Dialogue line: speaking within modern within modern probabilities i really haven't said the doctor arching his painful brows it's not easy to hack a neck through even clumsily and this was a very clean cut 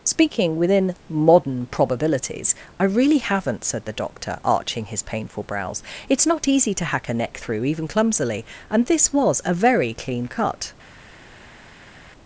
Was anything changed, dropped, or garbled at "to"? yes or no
no